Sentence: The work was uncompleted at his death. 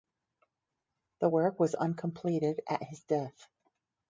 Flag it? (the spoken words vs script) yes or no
no